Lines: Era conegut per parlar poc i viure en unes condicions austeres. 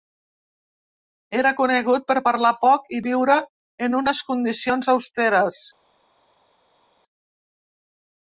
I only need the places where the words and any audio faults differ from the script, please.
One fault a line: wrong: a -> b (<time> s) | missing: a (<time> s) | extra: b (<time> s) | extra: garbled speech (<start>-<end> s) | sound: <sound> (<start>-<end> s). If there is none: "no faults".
no faults